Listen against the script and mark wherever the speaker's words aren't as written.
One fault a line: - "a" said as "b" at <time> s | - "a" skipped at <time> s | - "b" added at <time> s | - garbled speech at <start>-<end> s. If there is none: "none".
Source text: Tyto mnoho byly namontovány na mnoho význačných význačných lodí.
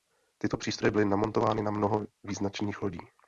- "mnoho" said as "přístroje" at 0.6 s
- "význačných" skipped at 2.8 s